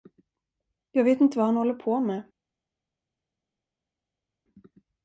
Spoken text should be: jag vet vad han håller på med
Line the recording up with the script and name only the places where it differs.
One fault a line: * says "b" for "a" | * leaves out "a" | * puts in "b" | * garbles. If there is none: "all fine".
* puts in "inte"